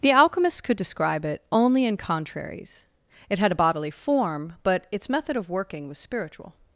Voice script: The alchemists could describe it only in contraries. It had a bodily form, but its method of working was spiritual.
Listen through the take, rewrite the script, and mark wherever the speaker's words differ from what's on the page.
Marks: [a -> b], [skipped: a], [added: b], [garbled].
The alchemists could describe it only in contraries. It had a bodily form, but its method of working was spiritual.